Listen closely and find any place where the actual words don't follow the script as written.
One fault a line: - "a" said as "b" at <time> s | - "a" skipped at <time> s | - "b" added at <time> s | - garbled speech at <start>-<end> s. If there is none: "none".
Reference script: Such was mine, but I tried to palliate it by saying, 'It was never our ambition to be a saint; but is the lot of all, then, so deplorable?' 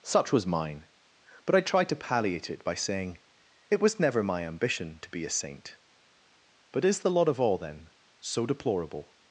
- "our" said as "my" at 4.2 s